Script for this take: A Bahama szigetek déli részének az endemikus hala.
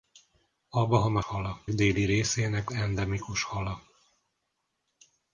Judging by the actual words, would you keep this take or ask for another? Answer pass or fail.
fail